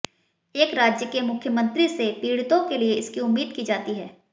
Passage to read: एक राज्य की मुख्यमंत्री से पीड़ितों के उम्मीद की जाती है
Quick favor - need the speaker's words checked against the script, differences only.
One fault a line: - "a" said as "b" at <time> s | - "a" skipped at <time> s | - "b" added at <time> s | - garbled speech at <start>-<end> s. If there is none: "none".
- "की" said as "के" at 1.1 s
- "लिए इसकी" added at 2.8 s